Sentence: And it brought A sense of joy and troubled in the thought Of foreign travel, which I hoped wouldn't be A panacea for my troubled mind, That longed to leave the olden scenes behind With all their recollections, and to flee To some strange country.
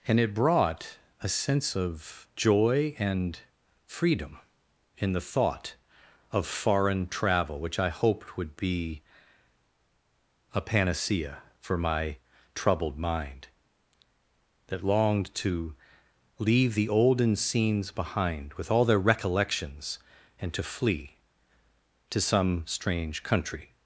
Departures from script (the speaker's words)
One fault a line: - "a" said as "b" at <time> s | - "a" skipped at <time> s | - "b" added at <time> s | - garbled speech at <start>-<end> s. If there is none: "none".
- "troubled" said as "freedom" at 3.9 s
- "wouldn't" said as "would" at 8.4 s